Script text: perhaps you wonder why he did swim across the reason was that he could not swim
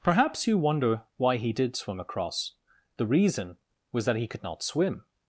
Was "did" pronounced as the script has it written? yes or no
yes